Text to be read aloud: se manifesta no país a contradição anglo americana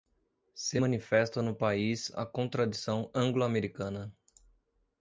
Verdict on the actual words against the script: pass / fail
pass